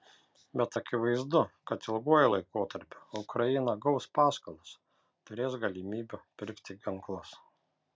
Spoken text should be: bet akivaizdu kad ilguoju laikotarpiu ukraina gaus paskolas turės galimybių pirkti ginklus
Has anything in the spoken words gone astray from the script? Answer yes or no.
no